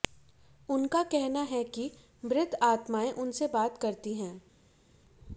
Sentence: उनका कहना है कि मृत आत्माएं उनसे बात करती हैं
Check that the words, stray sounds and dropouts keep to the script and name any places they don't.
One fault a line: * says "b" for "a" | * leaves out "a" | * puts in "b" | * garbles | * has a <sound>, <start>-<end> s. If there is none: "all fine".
all fine